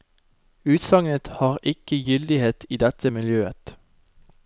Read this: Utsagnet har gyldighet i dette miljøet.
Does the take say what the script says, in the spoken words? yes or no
no